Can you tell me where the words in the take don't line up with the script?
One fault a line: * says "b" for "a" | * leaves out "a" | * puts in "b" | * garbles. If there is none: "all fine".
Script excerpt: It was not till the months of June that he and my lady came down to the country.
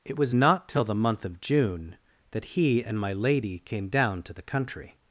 * says "month" for "months"